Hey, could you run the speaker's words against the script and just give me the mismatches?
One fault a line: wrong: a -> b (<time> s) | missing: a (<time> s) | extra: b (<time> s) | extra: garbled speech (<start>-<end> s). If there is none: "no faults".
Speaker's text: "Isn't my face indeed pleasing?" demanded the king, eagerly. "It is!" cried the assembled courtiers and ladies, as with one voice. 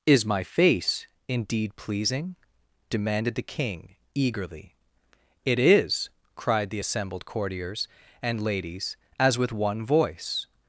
wrong: Isn't -> Is (0.1 s)